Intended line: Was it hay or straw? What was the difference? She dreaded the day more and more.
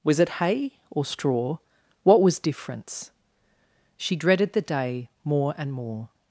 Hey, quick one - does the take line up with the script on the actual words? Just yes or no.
no